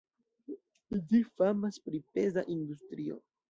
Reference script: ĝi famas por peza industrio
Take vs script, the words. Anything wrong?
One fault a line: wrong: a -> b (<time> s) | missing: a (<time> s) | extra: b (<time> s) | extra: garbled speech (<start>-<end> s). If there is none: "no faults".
wrong: por -> pri (1.9 s)